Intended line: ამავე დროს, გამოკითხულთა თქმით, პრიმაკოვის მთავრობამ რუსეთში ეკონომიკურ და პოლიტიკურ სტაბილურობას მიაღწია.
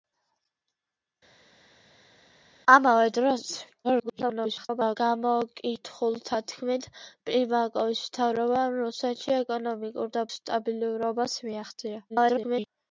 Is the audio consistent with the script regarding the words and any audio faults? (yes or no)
no